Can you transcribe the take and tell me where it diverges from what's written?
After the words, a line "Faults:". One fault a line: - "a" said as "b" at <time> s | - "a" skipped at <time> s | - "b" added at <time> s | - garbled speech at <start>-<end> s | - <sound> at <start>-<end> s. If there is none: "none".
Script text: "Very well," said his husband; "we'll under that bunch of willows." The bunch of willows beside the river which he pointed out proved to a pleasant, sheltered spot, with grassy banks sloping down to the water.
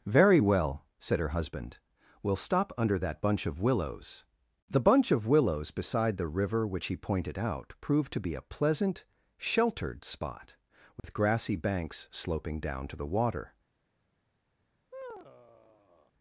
"Very well," said her husband; "we'll stop under that bunch of willows." The bunch of willows beside the river which he pointed out proved to be a pleasant, sheltered spot, with grassy banks sloping down to the water.
Faults:
- "his" said as "her" at 1.2 s
- "stop" added at 2.4 s
- "be" added at 8.2 s
- dropout at 11.0-11.0 s
- sigh at 14.9-16.1 s